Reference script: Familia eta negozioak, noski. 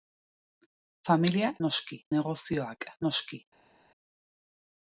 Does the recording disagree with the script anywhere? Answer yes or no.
yes